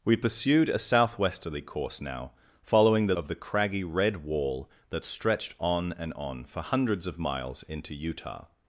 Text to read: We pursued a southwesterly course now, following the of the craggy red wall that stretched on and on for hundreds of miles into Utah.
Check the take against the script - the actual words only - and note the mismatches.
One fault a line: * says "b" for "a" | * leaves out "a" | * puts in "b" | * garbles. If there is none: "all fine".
all fine